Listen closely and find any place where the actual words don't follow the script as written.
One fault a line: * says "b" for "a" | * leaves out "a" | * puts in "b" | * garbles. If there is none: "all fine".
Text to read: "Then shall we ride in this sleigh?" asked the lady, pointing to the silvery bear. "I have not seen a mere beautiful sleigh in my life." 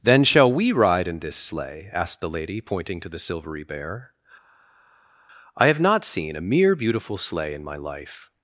all fine